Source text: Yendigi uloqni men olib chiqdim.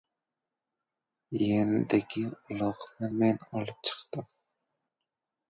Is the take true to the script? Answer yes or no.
yes